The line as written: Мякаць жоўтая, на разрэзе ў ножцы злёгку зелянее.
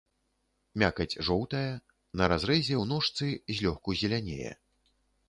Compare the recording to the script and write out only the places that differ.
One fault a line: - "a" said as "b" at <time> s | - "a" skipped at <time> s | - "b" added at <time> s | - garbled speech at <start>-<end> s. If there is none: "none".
none